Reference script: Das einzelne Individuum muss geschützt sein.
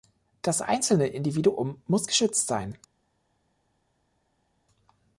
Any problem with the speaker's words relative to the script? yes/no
no